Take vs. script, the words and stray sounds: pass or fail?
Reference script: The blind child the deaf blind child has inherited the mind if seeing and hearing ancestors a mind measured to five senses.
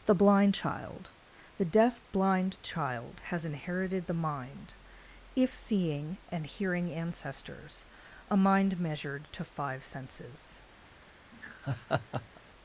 fail